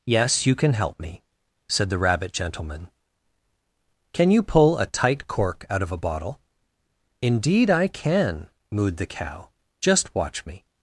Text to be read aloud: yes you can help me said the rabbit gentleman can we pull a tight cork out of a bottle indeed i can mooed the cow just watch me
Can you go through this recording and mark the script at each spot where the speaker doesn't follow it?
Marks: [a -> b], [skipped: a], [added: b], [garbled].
yes you can help me said the rabbit gentleman can [we -> you] pull a tight cork out of a bottle indeed i can mooed the cow just watch me